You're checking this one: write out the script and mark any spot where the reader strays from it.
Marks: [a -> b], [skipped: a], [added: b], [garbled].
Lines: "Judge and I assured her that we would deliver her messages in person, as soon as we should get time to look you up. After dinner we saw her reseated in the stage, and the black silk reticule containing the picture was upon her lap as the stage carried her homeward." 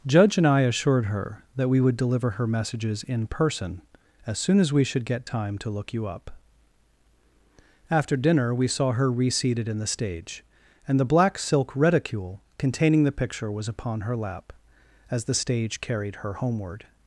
"Judge and I assured her that we would deliver her messages in person, as soon as we should get time to look you up. After dinner we saw her reseated in the stage, and the black silk reticule containing the picture was upon her lap as the stage carried her homeward."